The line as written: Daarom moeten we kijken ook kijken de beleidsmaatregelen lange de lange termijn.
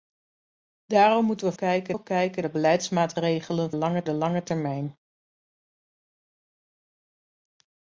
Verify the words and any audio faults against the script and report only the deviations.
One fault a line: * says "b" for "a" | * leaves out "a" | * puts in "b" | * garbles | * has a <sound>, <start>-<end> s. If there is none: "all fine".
all fine